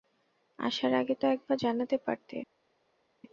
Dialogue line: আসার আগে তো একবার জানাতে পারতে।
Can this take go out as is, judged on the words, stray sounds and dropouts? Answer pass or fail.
pass